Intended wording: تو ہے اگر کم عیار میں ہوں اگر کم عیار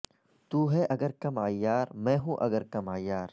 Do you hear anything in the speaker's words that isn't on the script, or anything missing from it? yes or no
no